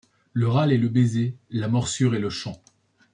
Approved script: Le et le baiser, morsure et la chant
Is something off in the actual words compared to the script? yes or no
yes